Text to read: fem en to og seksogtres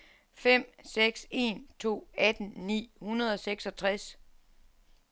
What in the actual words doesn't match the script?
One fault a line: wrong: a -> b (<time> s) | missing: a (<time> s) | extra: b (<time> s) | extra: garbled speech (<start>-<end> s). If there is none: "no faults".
extra: seks (0.8 s)
extra: atten ni hundrede (2.2 s)